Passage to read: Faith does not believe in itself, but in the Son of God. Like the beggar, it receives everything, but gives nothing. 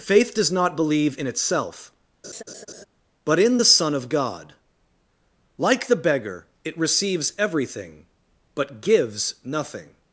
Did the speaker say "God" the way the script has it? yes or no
yes